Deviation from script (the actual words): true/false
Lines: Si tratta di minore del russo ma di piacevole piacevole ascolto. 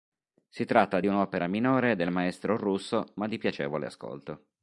true